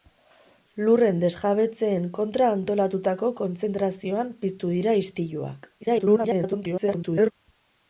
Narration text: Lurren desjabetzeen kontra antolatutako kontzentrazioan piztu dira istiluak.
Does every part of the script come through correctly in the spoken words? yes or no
no